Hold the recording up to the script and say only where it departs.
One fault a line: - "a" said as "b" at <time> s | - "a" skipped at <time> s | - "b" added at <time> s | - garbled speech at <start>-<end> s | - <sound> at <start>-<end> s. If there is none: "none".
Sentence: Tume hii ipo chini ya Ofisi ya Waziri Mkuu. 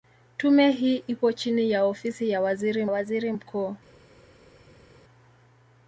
- "Waziri" added at 2.9 s